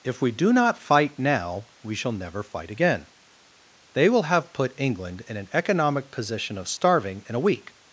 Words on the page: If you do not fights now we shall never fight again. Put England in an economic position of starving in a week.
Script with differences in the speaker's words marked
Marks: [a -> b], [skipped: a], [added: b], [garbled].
If [you -> we] do not [fights -> fight] now we shall never fight again. [added: They will have] Put England in an economic position of starving in a week.